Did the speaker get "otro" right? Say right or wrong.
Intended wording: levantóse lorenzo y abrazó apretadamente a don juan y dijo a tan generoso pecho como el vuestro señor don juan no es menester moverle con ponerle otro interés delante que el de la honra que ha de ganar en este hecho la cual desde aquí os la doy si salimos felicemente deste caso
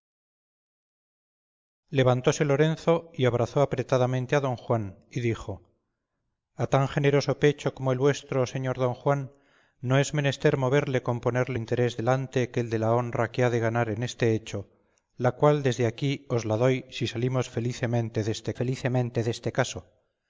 wrong